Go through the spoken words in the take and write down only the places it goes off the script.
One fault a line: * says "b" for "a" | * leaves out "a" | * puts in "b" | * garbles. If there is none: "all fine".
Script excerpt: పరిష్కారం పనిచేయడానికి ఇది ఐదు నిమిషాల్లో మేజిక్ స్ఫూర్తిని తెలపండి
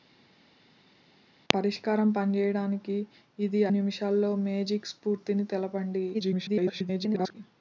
* leaves out "ఐదు"
* garbles